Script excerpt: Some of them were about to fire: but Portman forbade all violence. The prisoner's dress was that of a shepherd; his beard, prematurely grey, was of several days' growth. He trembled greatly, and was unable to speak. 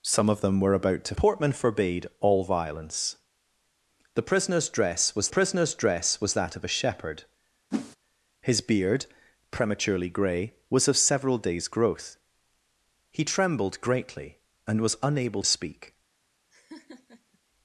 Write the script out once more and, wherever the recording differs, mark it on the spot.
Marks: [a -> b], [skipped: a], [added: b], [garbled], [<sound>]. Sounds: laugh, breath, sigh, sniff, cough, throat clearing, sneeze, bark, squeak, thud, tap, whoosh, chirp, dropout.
Some of them were about to [skipped: fire: but] Portman forbade all violence. The prisoner's dress was [added: prisoner's dress was] that of a shepherd; [whoosh] his beard, prematurely grey, was of several days' growth. He trembled greatly, and was unable [skipped: to] speak. [laugh]